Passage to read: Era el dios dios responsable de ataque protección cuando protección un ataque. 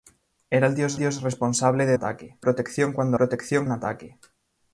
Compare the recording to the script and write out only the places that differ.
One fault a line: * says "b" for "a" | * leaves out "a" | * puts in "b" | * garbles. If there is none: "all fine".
all fine